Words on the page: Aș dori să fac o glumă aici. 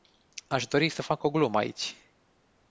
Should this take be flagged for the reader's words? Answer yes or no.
no